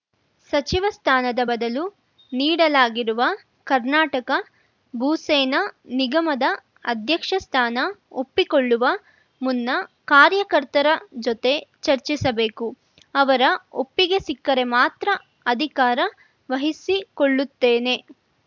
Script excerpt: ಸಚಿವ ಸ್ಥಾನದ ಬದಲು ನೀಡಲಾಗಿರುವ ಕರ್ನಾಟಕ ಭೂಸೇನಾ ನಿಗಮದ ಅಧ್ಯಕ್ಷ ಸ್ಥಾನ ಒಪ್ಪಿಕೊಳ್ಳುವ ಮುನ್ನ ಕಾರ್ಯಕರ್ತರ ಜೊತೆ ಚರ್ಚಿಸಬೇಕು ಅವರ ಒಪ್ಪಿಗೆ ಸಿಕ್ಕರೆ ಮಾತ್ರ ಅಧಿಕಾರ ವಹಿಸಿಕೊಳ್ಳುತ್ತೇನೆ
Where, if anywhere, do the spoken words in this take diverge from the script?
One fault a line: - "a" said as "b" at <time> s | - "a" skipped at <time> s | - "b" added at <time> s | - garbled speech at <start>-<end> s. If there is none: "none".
none